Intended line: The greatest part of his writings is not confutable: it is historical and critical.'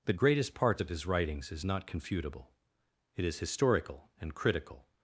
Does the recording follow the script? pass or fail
fail